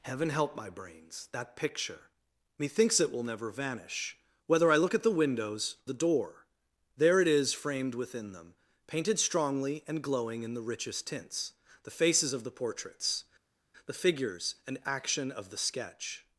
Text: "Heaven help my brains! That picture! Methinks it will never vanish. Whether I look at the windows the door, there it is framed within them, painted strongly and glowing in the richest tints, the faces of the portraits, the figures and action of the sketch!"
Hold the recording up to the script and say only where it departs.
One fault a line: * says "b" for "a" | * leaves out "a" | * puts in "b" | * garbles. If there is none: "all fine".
all fine